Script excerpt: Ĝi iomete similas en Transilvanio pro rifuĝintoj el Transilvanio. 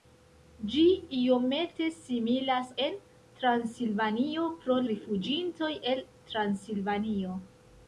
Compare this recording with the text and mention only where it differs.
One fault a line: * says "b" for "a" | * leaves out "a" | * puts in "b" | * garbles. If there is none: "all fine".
all fine